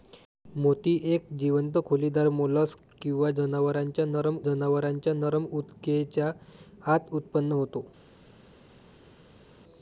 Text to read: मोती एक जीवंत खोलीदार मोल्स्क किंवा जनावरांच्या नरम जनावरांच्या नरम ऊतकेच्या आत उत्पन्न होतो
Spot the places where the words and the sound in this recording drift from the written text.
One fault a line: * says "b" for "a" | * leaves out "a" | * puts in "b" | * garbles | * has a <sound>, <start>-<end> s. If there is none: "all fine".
all fine